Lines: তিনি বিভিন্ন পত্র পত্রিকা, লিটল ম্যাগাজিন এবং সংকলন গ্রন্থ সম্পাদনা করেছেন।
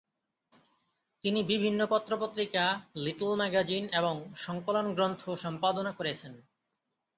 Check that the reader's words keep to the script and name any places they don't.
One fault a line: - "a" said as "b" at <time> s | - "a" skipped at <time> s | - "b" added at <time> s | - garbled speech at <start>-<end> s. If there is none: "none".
none